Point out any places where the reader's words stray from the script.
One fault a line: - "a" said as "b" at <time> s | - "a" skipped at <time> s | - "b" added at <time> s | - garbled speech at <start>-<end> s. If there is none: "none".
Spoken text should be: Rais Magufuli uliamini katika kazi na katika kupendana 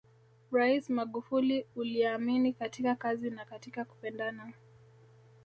none